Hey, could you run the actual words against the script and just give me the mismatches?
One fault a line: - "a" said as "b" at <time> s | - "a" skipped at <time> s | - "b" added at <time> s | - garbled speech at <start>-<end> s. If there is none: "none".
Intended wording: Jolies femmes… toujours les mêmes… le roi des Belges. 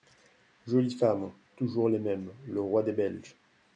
none